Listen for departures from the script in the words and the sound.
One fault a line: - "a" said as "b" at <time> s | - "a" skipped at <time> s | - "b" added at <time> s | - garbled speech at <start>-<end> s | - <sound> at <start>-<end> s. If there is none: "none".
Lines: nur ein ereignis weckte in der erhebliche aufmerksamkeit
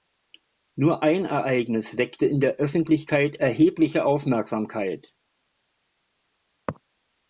- "öffentlichkeit" added at 2.5 s